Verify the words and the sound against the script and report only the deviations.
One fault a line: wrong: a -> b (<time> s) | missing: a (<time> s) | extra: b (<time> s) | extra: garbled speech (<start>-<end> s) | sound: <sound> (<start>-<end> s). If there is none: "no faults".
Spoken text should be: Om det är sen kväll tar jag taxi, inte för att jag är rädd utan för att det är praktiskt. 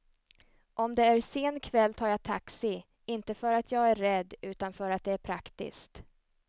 no faults